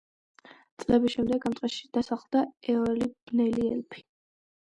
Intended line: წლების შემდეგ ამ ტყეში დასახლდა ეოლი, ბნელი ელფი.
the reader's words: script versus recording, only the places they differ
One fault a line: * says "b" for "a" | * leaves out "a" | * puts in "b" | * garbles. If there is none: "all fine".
all fine